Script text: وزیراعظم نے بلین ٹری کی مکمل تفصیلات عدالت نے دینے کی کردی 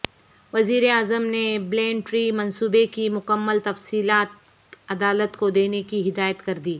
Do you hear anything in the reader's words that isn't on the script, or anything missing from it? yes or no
yes